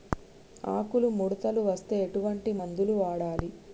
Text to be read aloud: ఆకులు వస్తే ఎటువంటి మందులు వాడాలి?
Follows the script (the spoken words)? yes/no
no